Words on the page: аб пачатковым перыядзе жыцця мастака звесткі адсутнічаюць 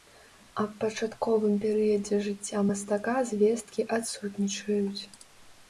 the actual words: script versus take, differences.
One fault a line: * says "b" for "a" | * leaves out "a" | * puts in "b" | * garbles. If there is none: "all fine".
all fine